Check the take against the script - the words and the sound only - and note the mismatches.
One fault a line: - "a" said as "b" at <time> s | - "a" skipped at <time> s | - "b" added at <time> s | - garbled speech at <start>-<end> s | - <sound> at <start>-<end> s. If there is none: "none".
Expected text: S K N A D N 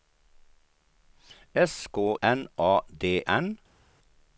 none